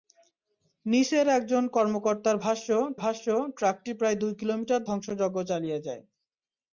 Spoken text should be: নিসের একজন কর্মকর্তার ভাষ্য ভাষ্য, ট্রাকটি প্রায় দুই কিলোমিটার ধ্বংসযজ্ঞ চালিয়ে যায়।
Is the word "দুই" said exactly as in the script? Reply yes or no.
yes